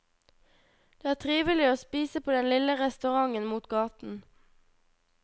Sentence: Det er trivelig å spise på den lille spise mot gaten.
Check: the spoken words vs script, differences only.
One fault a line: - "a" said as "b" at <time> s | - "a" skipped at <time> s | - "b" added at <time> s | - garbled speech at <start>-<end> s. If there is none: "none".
- "spise" said as "restauranten" at 2.8 s